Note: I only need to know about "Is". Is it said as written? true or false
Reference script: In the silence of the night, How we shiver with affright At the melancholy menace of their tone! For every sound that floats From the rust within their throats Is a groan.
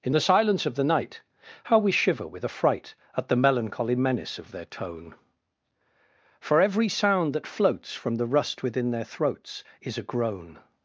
true